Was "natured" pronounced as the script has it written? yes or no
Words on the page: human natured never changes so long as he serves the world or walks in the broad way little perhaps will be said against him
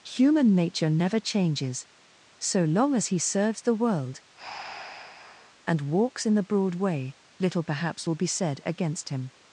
no